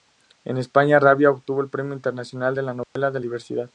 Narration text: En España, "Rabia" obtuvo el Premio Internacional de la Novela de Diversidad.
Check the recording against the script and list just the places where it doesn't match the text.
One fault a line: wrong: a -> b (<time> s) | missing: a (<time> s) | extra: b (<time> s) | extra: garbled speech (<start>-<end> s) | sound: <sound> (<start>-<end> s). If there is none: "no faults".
sound: dropout (2.8-3.0 s)